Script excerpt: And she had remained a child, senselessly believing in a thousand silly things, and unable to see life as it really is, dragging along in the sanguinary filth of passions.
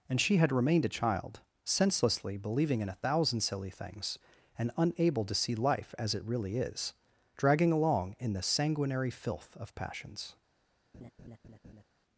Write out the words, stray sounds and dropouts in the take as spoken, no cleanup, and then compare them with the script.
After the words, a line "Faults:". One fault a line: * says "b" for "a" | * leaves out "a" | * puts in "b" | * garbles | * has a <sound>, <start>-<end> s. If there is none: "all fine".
And she had remained a child, senselessly believing in a thousand silly things, and unable to see life as it really is, dragging along in the sanguinary filth of passions.
Faults:
* has a laugh, 10.9-11.8 s